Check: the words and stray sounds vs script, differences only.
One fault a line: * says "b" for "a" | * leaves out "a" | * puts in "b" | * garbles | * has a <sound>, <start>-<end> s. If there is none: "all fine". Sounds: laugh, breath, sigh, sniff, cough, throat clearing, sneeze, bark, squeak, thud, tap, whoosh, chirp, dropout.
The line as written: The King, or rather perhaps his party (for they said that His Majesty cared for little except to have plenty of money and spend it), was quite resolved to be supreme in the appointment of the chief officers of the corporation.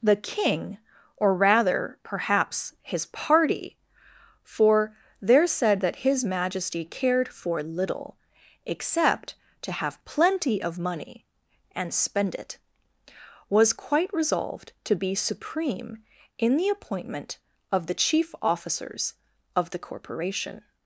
* says "there" for "they"